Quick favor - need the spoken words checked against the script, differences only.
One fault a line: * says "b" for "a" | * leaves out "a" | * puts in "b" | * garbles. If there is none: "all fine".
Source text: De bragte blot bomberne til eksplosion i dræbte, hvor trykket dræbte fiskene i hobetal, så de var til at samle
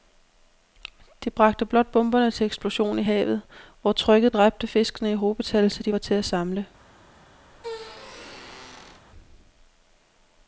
* says "havet" for "dræbte"